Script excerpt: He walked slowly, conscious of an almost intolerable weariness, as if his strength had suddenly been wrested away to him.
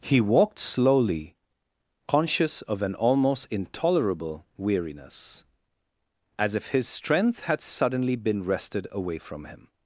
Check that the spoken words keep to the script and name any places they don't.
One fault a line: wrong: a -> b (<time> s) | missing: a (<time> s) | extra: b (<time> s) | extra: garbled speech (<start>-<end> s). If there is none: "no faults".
wrong: to -> from (9.2 s)